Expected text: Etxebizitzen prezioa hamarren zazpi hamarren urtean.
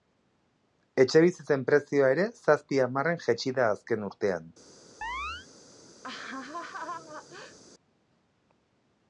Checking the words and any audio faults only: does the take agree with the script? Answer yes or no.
no